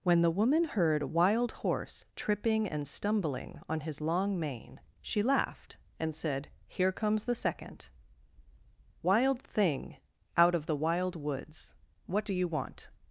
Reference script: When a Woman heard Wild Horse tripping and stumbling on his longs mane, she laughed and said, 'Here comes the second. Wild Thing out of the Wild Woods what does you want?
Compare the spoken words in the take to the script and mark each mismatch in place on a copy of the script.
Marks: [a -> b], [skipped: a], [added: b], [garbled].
When [a -> the] Woman heard Wild Horse tripping and stumbling on his [longs -> long] mane, she laughed and said, 'Here comes the second. Wild Thing out of the Wild Woods what [does -> do] you want?